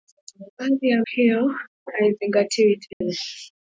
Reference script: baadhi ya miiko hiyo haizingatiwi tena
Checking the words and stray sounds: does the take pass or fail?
fail